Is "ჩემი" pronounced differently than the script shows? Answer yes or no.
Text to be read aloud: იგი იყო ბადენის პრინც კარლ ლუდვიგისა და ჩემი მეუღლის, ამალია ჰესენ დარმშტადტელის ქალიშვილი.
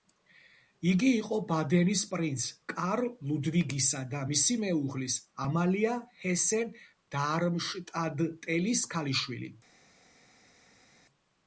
yes